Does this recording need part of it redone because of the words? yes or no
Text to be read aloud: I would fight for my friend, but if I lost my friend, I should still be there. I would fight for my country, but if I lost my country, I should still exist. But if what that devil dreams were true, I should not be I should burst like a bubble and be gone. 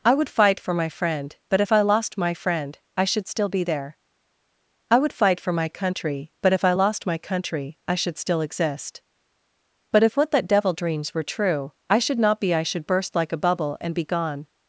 no